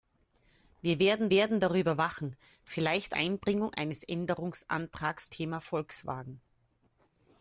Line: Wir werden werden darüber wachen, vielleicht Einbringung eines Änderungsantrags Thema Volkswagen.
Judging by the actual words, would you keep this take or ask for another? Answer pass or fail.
pass